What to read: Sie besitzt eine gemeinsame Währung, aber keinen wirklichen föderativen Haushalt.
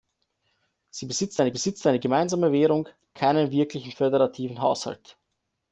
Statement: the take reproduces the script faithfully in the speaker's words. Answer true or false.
false